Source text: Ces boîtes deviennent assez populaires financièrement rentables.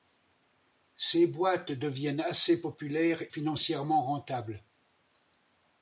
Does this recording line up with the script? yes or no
yes